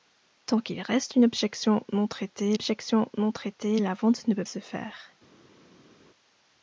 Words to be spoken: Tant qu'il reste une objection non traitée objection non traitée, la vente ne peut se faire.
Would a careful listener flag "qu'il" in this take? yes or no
no